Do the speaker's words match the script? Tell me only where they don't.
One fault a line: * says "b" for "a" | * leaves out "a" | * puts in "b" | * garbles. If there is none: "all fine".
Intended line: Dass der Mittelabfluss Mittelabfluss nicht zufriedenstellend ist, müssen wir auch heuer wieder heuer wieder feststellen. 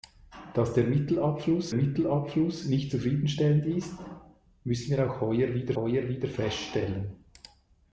all fine